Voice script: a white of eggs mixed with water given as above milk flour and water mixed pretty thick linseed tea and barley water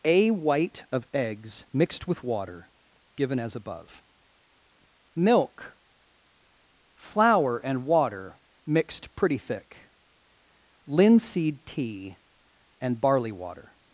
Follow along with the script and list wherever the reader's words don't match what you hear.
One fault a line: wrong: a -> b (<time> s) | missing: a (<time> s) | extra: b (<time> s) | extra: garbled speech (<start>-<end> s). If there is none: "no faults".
no faults